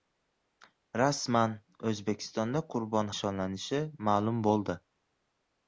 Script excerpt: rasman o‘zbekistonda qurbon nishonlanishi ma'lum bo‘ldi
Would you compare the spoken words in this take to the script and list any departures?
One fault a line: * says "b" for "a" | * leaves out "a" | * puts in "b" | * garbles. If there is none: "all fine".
all fine